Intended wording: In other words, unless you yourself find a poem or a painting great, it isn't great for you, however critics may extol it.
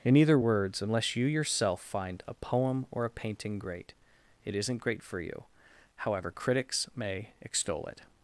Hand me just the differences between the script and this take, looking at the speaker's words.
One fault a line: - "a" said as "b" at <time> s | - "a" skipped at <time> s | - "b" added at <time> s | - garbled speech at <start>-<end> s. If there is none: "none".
- "other" said as "either" at 0.1 s